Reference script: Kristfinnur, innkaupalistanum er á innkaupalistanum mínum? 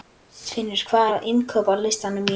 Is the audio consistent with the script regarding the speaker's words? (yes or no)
no